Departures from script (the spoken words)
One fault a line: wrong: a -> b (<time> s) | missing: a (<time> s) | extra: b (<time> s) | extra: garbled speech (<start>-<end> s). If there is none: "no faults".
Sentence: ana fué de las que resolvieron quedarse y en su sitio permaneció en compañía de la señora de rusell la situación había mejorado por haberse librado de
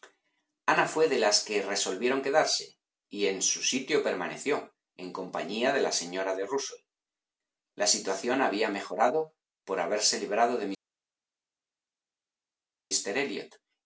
no faults